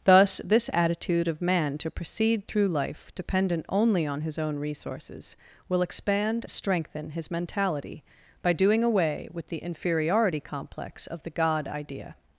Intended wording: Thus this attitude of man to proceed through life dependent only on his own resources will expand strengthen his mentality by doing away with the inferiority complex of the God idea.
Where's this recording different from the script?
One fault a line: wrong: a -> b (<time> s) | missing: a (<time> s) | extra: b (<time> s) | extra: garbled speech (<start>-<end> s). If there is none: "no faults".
no faults